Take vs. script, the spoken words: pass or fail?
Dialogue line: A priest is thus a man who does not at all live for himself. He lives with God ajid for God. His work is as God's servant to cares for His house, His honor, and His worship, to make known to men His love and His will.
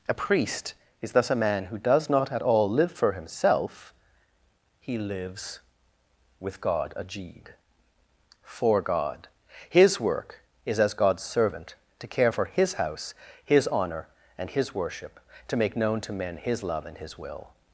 fail